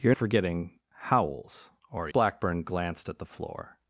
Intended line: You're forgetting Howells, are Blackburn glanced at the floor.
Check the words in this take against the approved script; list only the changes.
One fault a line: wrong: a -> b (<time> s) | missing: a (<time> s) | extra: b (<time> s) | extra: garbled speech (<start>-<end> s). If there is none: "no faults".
no faults